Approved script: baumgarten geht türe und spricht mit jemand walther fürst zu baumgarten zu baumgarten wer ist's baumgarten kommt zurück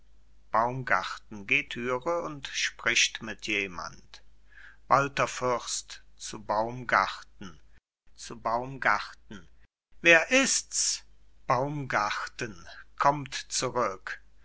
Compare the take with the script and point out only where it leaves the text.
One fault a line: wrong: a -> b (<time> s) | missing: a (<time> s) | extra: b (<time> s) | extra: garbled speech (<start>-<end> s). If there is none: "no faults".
no faults